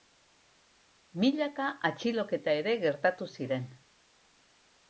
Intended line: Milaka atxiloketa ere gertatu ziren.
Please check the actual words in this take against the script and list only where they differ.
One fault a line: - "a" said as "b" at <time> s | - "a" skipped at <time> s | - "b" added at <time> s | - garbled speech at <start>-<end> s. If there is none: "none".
none